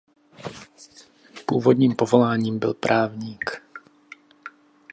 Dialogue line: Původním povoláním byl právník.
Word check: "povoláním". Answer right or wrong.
right